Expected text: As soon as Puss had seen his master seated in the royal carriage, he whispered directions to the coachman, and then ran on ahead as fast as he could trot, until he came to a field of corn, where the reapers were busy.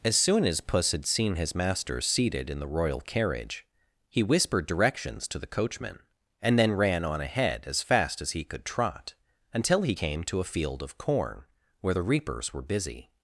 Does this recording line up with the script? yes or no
yes